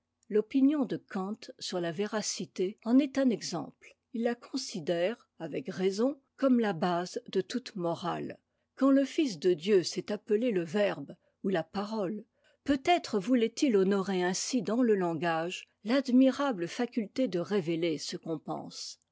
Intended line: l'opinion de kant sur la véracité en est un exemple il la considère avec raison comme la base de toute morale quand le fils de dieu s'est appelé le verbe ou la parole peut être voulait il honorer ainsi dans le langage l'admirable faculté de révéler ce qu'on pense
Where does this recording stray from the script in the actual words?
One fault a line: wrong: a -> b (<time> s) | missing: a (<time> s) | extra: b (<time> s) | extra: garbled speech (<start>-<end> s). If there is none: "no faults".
no faults